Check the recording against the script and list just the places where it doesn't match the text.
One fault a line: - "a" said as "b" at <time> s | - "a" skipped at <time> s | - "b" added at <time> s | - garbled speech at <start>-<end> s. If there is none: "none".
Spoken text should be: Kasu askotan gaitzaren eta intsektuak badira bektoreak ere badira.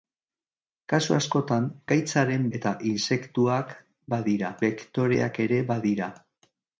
none